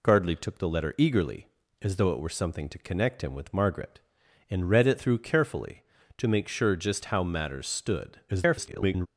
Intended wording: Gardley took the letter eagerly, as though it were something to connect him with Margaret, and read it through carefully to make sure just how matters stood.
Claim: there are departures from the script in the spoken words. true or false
true